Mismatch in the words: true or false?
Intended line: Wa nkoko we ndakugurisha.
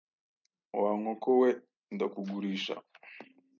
false